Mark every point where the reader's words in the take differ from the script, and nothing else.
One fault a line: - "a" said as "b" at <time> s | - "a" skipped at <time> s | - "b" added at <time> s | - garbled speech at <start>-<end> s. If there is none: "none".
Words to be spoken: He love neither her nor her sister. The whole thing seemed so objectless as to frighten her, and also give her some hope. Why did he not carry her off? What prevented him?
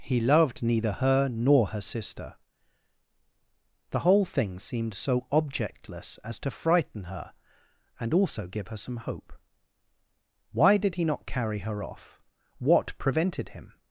- "love" said as "loved" at 0.2 s